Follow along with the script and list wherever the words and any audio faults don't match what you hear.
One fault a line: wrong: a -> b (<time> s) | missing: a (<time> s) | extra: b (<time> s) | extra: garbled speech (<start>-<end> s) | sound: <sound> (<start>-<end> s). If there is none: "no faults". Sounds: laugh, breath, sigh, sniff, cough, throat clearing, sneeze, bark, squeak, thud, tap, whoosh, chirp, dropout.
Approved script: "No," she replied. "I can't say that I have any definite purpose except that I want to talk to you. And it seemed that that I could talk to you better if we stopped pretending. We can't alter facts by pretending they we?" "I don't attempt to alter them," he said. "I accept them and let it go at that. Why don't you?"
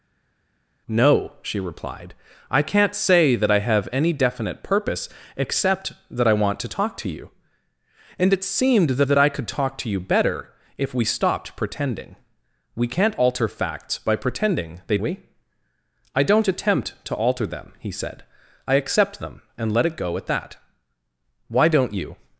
no faults